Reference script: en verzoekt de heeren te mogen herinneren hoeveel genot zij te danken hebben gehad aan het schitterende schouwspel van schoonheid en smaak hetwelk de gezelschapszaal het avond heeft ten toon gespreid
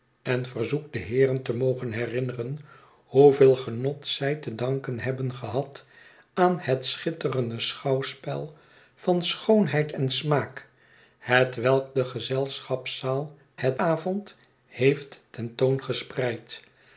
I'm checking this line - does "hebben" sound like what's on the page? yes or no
yes